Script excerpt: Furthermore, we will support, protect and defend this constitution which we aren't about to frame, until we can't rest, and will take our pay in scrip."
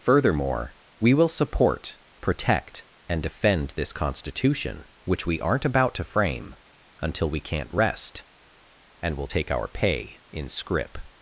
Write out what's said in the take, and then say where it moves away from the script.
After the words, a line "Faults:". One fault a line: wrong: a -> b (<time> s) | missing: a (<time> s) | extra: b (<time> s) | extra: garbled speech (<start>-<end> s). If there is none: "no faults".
Furthermore, we will support, protect and defend this constitution which we aren't about to frame, until we can't rest, and will take our pay in scrip."
Faults:
no faults